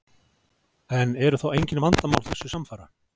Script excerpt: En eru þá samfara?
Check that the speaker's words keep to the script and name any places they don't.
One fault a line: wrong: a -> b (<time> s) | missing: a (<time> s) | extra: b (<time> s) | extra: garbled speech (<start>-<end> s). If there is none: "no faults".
extra: engin vandamál þessu (1.6 s)